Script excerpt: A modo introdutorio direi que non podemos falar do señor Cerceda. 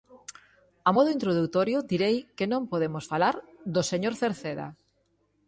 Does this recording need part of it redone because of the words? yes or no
no